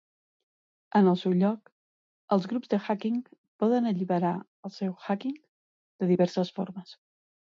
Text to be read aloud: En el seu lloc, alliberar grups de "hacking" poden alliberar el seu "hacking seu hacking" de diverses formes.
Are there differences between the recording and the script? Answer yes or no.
yes